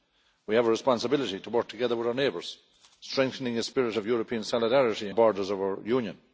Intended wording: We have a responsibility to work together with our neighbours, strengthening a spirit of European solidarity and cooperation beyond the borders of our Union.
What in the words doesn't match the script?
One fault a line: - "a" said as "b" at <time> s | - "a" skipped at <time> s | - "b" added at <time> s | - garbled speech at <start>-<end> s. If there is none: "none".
- "and cooperation beyond" skipped at 5.1 s